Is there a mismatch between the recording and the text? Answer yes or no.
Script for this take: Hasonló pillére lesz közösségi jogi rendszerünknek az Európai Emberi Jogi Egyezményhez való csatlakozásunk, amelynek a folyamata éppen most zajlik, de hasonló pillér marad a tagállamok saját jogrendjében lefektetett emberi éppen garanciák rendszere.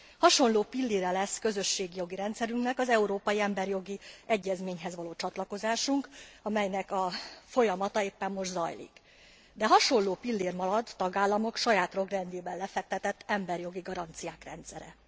yes